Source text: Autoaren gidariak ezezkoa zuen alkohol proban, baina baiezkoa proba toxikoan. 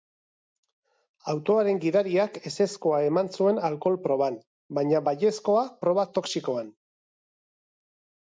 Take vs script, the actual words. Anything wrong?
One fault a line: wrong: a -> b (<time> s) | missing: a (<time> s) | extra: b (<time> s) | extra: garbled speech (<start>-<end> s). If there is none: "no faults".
extra: eman (3.1 s)